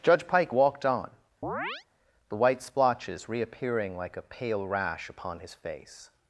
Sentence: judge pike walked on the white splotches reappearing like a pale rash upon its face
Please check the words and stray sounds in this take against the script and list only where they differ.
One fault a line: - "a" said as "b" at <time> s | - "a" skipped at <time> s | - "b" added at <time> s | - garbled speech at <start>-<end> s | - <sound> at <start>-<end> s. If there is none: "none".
- chirp at 1.4-1.8 s
- "its" said as "his" at 5.4 s